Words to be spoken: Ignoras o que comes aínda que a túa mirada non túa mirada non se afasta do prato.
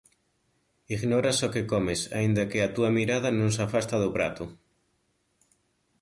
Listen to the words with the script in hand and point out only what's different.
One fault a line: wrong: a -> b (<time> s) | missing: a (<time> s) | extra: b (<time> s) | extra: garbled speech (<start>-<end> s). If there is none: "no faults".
missing: túa mirada non (3.5 s)